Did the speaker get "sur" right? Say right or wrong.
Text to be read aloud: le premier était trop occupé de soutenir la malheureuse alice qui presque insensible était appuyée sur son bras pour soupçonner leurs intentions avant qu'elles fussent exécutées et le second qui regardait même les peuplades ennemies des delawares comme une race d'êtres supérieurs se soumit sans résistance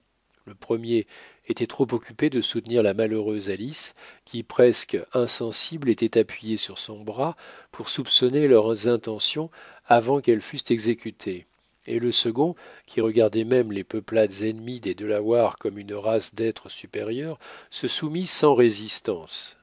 right